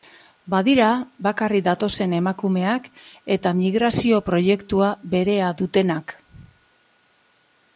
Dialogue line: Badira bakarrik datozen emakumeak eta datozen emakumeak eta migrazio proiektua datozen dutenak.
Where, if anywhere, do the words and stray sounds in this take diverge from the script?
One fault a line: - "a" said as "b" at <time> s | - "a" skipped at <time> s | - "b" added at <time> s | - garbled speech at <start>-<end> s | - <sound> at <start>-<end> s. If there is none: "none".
- "datozen emakumeak eta" skipped at 3.5 s
- "datozen" said as "berea" at 5.1 s